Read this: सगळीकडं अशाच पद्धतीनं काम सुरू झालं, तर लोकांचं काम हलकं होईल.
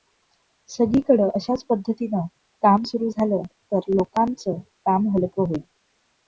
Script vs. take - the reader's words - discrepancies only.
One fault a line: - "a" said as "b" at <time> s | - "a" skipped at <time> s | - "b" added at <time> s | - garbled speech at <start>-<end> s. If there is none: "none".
none